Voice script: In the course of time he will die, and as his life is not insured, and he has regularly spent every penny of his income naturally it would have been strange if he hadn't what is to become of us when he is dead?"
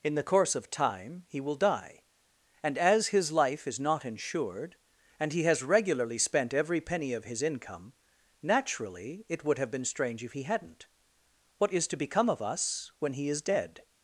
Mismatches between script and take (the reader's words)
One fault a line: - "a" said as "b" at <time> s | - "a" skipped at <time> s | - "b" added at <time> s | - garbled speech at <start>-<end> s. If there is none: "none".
none